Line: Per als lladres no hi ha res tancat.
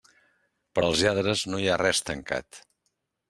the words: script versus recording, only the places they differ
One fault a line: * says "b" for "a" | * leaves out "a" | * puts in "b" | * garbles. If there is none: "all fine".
all fine